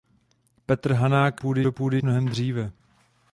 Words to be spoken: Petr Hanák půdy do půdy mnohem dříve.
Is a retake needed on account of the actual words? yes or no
no